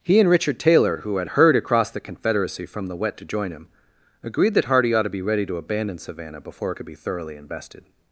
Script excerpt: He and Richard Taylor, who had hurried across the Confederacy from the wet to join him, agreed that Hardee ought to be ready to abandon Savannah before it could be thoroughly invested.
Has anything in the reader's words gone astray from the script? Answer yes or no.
no